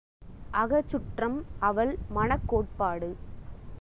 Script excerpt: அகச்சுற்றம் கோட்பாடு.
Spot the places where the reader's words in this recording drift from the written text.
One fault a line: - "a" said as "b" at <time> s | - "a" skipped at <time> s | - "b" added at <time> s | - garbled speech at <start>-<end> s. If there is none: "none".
- "அவள் மனக்" added at 1.6 s